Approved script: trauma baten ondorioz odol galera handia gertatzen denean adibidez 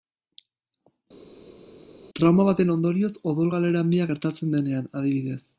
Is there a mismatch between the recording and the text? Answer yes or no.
no